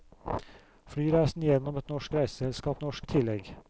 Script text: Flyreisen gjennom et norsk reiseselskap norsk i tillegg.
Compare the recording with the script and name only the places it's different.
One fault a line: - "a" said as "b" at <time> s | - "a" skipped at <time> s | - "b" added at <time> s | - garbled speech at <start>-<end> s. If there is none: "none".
none